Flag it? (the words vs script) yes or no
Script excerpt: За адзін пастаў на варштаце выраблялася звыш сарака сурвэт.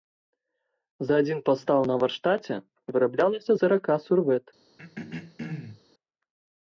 yes